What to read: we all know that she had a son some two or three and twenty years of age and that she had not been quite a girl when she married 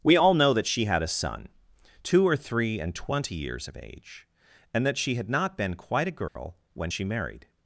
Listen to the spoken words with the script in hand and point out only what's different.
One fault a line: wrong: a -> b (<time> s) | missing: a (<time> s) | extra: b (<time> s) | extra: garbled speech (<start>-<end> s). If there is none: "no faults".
missing: some (1.5 s)